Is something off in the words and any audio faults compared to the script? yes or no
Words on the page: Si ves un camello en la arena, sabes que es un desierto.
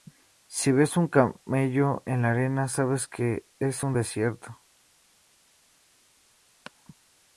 no